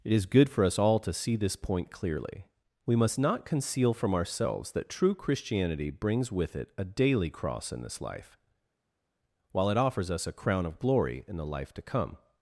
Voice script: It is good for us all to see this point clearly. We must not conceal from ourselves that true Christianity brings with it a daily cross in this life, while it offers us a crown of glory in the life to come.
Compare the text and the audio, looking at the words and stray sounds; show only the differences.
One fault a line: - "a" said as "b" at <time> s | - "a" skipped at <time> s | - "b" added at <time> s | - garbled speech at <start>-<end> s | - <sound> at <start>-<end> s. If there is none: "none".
none